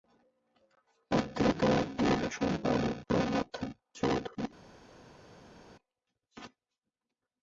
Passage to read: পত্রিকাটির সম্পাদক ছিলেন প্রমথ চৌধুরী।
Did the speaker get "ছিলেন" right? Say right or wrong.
wrong